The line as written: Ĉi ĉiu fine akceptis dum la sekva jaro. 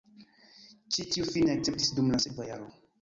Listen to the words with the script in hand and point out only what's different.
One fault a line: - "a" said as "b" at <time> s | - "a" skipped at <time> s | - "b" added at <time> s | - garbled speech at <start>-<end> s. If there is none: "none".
- "ĉiu" said as "tiu" at 1.1 s